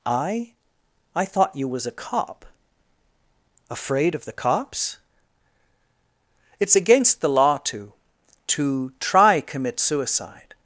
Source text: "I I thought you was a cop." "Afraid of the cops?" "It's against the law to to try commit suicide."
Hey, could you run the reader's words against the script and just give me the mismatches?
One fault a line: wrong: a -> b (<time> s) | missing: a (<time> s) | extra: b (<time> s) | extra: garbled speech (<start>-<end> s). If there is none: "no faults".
no faults